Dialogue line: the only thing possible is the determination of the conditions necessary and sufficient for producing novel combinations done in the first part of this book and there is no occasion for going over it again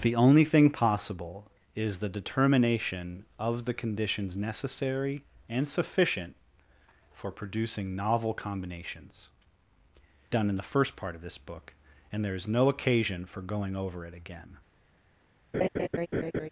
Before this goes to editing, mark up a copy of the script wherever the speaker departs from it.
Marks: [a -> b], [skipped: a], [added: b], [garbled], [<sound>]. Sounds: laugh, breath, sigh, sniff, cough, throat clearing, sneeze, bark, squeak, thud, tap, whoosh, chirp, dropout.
the only thing possible is the determination of the conditions necessary and sufficient for producing novel combinations done in the first part of this book and there is no occasion for going over it again [laugh]